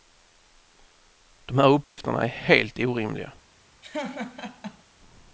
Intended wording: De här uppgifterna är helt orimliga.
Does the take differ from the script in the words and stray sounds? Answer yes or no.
yes